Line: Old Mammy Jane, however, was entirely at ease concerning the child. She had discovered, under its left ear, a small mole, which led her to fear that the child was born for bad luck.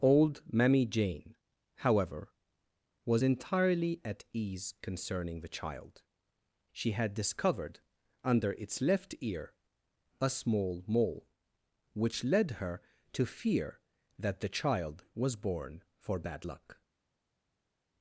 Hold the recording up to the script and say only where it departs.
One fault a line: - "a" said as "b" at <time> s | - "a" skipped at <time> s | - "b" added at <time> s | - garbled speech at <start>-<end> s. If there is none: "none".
none